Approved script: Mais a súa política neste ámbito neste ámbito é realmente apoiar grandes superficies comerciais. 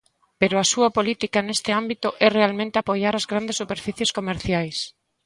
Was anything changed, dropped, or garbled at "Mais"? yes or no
yes